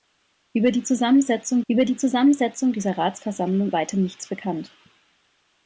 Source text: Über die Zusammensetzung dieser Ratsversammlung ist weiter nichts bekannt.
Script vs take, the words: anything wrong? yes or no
yes